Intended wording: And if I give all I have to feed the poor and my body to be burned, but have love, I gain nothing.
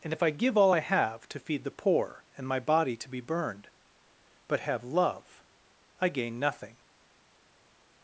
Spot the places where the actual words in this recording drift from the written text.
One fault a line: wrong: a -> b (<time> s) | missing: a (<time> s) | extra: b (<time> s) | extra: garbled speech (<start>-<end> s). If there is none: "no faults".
no faults